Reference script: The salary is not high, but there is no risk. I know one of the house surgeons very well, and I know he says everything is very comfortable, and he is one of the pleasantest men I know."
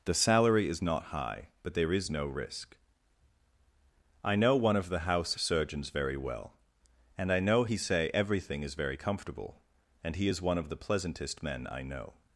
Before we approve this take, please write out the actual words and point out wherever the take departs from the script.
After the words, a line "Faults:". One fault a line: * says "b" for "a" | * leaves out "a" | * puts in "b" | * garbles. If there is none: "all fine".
The salary is not high, but there is no risk. I know one of the house surgeons very well, and I know he say everything is very comfortable, and he is one of the pleasantest men I know."
Faults:
* says "say" for "says"